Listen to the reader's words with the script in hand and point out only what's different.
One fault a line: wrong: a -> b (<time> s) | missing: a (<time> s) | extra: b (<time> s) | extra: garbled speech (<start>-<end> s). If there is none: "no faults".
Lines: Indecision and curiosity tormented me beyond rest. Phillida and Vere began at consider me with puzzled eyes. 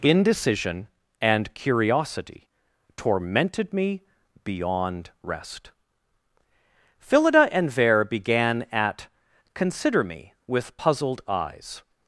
no faults